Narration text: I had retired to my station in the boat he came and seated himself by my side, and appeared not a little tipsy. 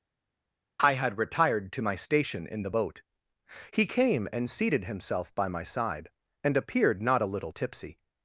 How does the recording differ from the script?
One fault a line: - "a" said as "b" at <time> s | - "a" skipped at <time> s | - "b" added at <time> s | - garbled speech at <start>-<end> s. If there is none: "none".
none